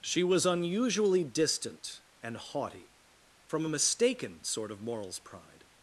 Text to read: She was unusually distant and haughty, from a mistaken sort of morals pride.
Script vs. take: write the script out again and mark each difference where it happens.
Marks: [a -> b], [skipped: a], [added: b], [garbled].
She was unusually distant and haughty, from a mistaken sort of morals pride.